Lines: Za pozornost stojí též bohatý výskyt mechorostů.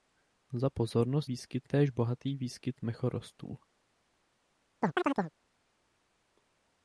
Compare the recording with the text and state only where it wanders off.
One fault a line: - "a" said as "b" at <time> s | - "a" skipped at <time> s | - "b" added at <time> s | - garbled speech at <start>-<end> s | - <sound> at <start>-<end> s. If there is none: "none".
- "stojí" said as "výskyt" at 1.2 s
- chirp at 4.8-5.3 s